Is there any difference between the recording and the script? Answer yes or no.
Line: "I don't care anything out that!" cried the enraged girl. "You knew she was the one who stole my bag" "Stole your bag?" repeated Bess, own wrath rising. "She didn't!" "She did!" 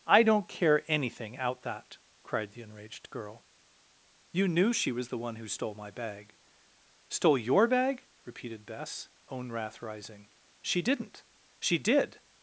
no